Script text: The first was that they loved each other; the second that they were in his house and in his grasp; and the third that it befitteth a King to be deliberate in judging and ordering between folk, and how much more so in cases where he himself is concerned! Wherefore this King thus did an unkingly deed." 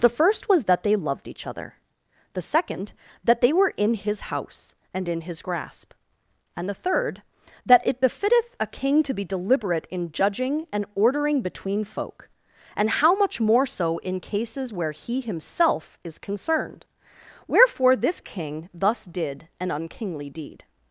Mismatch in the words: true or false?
false